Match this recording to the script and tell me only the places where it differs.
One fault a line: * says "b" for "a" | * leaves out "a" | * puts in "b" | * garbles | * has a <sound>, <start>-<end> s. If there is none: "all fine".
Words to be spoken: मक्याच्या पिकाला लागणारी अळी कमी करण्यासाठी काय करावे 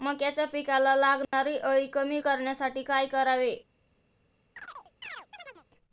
* has a dropout, 1.2-1.3 s
* has a chirp, 4.6-5.7 s